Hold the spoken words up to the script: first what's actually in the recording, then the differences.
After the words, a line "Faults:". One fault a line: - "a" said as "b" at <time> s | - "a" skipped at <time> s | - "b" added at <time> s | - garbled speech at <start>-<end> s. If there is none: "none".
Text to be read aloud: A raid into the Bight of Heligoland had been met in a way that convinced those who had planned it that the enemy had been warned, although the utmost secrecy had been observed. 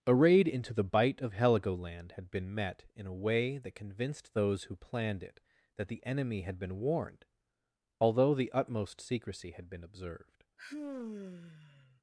A raid into the Bight of Heligoland had been met in a way that convinced those who planned it that the enemy had been warned, although the utmost secrecy had been observed.
Faults:
- "had" skipped at 4.8 s